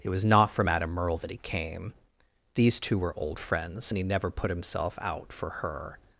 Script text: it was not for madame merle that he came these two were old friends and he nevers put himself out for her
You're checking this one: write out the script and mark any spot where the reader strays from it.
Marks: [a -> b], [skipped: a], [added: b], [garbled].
it was not for madame merle that he came these two were old friends and he [nevers -> never] put himself out for her